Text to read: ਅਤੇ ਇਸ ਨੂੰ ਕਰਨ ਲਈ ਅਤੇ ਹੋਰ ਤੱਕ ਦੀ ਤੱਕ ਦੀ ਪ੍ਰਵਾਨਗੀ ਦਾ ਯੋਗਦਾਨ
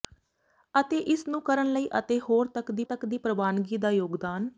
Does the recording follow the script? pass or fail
pass